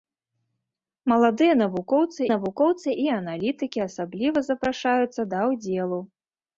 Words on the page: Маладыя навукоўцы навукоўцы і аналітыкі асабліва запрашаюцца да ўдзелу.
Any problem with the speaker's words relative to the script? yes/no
no